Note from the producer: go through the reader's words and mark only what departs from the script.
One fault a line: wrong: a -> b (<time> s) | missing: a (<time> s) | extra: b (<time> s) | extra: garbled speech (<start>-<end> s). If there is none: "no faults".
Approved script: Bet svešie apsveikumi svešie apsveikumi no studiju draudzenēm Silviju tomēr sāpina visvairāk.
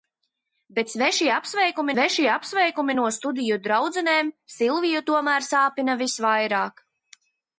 no faults